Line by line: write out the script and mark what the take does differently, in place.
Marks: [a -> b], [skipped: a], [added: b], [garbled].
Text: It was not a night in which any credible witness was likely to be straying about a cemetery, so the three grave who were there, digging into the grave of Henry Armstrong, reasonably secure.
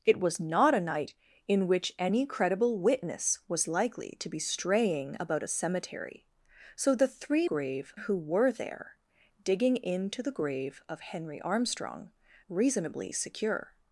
It was not a night in which any credible witness was likely to be straying about a cemetery, so the three grave who were there, digging into the grave of Henry Armstrong, reasonably secure.